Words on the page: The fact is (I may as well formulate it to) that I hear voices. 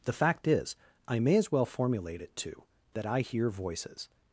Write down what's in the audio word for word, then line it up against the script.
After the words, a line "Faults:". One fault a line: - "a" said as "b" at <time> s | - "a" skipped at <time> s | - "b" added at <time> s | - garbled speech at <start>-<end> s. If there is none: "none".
The fact is (I may as well formulate it to) that I hear voices.
Faults:
none